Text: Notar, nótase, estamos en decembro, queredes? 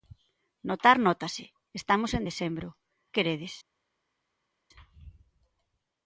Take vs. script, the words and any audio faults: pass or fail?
pass